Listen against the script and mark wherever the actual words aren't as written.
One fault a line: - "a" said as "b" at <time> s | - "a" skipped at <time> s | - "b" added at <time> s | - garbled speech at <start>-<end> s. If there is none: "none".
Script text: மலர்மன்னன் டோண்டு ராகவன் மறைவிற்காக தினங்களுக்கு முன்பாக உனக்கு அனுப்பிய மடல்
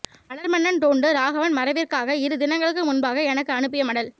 - "இரு" added at 2.2 s
- "உனக்கு" said as "எனக்கு" at 3.3 s